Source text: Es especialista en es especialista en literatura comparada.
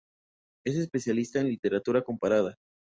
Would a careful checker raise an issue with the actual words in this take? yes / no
yes